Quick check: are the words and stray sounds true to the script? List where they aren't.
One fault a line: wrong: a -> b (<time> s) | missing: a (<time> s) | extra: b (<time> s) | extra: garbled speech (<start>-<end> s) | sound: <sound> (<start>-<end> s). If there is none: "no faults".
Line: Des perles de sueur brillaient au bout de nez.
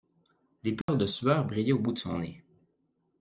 sound: dropout (0.8-0.9 s)
extra: son (2.0 s)